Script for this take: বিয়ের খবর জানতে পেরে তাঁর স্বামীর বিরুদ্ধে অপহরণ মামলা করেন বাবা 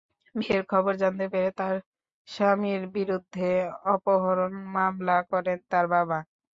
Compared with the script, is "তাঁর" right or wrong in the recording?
right